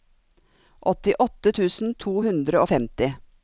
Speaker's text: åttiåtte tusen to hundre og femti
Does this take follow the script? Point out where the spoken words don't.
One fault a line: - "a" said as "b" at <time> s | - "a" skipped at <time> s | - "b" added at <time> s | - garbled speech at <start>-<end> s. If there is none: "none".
none